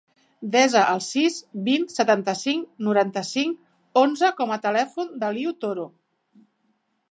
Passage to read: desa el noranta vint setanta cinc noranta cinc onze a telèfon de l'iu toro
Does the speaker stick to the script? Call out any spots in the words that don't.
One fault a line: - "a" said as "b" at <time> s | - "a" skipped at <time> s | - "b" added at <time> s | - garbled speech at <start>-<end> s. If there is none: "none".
- "noranta" said as "sis" at 1.1 s
- "com" added at 4.4 s